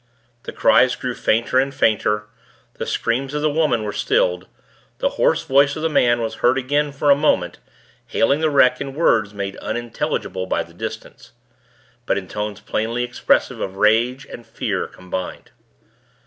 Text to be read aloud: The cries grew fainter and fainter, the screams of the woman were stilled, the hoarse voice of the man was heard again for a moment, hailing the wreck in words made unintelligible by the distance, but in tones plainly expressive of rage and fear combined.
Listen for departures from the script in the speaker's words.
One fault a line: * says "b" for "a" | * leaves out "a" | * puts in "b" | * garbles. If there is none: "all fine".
all fine